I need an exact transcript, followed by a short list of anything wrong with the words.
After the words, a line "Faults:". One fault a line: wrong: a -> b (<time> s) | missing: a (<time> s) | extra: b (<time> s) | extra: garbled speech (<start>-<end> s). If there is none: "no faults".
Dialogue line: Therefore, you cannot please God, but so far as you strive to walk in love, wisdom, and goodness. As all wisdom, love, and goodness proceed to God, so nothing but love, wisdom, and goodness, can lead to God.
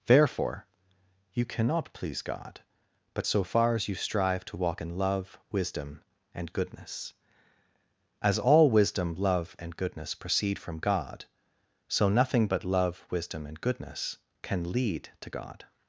Therefore, you cannot please God, but so far as you strive to walk in love, wisdom, and goodness. As all wisdom, love, and goodness proceed from God, so nothing but love, wisdom, and goodness, can lead to God.
Faults:
wrong: to -> from (10.6 s)